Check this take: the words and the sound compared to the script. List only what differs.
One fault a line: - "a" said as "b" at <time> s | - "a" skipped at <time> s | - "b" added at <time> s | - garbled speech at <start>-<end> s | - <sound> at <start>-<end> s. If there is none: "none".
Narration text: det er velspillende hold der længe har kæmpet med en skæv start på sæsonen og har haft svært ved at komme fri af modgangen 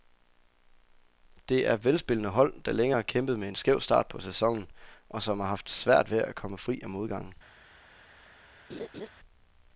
- "som" added at 5.2 s
- laugh at 8.7-9.1 s